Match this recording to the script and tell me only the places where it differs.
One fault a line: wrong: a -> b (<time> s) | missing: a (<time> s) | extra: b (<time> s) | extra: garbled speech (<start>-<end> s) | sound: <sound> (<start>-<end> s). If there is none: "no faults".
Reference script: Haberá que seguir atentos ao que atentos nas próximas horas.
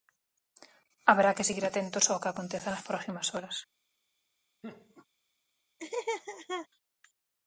wrong: atentos -> aconteza (2.3 s)
sound: laugh (4.6-5.1 s)
sound: laugh (5.8-6.7 s)